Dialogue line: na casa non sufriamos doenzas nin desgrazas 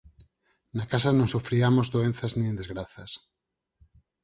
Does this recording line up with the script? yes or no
yes